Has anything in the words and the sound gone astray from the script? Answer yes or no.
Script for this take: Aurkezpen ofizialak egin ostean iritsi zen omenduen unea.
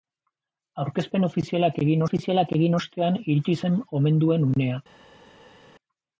yes